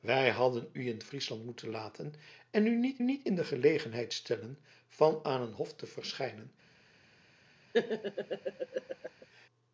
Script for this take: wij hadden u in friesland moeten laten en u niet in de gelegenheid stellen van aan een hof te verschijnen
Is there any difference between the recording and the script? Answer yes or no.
yes